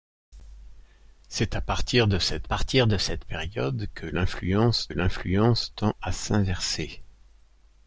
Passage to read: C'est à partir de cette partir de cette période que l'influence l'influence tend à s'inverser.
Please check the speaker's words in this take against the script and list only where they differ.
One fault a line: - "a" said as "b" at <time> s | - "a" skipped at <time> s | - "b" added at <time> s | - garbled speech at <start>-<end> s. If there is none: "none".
none